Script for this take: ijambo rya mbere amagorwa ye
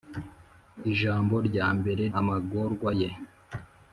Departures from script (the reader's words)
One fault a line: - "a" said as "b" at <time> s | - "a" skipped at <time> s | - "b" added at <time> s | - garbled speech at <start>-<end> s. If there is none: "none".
none